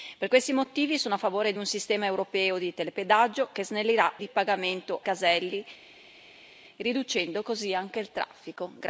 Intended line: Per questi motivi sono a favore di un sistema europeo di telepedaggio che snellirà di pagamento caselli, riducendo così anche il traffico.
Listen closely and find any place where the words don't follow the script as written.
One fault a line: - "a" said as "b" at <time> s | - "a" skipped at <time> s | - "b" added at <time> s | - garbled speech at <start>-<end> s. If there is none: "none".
none